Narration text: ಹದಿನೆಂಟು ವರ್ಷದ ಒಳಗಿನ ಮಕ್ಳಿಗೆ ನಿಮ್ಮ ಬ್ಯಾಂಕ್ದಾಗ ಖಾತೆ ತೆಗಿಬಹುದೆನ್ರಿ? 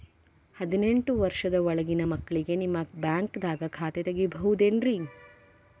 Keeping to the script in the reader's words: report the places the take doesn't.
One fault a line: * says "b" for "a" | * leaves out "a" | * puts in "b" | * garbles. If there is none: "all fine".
all fine